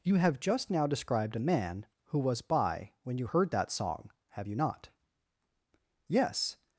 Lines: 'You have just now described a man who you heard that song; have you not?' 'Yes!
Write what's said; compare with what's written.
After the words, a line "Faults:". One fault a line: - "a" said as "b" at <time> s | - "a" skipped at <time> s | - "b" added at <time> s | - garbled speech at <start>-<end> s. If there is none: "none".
'You have just now described a man who was by when you heard that song; have you not?' 'Yes!
Faults:
- "was by when" added at 2.2 s